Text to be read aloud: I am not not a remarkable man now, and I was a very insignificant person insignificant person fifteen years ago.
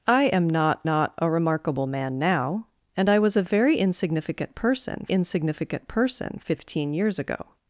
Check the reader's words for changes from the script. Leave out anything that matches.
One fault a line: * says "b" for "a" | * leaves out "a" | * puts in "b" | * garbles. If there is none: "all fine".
all fine